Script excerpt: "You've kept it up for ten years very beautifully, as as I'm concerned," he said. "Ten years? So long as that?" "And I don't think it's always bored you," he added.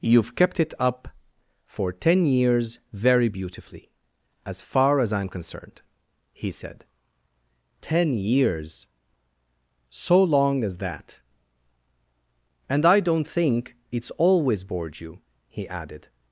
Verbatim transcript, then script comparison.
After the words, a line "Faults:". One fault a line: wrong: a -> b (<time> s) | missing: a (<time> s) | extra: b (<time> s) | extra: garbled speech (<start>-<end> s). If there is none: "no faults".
"You've kept it up for ten years very beautifully, as far as I'm concerned," he said. "Ten years? So long as that?" "And I don't think it's always bored you," he added.
Faults:
extra: far (4.6 s)